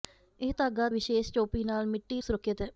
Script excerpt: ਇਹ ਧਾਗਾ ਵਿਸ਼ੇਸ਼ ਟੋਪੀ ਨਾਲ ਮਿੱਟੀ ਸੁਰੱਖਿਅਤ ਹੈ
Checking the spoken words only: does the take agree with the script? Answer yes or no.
yes